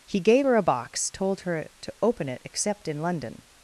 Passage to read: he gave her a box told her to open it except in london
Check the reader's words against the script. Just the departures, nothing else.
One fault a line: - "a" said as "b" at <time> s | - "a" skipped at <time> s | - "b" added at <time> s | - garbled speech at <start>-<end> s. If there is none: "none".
none